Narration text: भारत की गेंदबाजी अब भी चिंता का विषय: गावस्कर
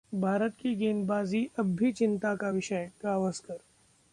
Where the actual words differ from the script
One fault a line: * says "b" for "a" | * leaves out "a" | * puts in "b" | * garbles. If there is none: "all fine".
all fine